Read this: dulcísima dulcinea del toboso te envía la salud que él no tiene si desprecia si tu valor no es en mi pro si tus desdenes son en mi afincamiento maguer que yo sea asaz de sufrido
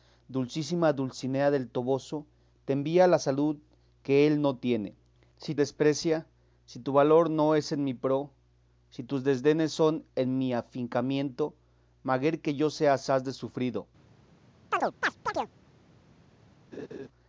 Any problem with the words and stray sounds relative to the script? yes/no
yes